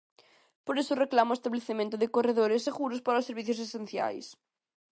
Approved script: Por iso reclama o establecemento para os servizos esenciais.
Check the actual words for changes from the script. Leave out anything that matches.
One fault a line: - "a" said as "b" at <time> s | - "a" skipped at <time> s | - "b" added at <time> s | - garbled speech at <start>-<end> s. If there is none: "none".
- "de corredores seguros" added at 2.0 s